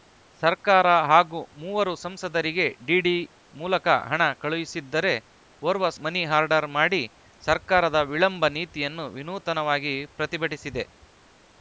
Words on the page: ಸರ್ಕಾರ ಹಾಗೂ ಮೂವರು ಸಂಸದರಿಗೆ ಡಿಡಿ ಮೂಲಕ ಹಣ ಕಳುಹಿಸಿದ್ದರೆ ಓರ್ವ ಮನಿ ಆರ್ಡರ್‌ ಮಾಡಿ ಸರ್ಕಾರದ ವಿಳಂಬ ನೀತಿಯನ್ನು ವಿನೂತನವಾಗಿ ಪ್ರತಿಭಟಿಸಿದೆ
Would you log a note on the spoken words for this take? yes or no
no